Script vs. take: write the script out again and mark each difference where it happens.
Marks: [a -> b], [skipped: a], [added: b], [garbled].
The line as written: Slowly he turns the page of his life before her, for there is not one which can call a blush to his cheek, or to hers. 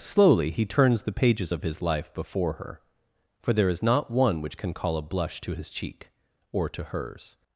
Slowly he turns the [page -> pages] of his life before her, for there is not one which can call a blush to his cheek, or to hers.